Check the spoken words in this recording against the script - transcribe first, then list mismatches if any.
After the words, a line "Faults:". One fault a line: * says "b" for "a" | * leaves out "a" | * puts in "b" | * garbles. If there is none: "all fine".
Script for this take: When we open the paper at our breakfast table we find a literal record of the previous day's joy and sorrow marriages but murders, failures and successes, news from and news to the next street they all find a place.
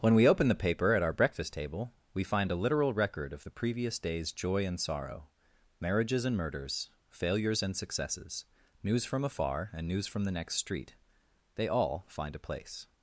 When we open the paper at our breakfast table we find a literal record of the previous day's joy and sorrow marriages and murders, failures and successes, news from afar and news from the next street they all find a place.
Faults:
* says "and" for "but"
* puts in "afar"
* says "from" for "to"